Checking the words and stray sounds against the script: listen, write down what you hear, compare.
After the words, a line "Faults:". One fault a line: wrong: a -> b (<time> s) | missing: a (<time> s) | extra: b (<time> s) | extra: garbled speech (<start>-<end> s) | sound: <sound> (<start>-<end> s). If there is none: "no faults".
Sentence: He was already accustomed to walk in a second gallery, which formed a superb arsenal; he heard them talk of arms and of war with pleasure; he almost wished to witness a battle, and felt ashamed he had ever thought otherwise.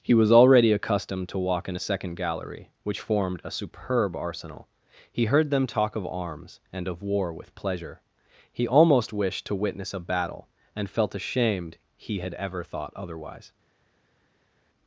He was already accustomed to walk in a second gallery, which formed a superb arsenal; he heard them talk of arms and of war with pleasure; he almost wished to witness a battle, and felt ashamed he had ever thought otherwise.
Faults:
no faults